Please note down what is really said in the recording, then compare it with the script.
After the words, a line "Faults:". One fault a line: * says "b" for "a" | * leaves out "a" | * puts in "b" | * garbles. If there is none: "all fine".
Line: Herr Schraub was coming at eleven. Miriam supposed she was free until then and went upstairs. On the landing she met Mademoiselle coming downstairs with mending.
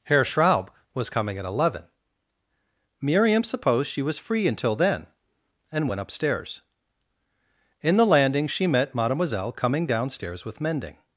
Herr Schraub was coming at eleven. Miriam supposed she was free until then and went upstairs. In the landing she met Mademoiselle coming downstairs with mending.
Faults:
* says "In" for "On"